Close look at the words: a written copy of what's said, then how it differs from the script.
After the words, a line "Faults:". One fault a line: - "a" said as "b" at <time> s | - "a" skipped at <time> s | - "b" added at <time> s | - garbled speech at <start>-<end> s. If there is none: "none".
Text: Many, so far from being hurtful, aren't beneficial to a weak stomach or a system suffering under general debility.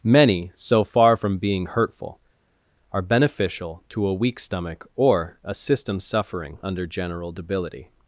Many, so far from being hurtful, are beneficial to a weak stomach or a system suffering under general debility.
Faults:
- "aren't" said as "are" at 2.9 s